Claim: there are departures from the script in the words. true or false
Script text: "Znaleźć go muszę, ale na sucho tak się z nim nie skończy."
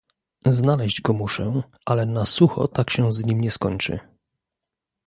false